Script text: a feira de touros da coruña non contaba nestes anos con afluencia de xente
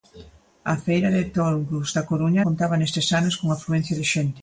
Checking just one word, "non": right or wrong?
wrong